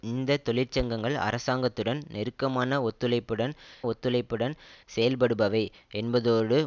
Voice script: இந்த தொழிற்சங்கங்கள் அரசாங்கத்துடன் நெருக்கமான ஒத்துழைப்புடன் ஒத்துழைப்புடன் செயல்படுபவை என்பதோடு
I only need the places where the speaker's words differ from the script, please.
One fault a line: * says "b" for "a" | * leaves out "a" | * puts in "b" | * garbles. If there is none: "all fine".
all fine